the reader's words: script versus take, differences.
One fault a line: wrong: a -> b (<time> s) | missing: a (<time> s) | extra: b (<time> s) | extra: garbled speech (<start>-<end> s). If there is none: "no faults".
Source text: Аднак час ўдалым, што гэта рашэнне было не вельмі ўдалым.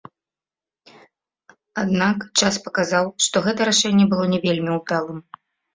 wrong: ўдалым -> паказаў (2.7 s)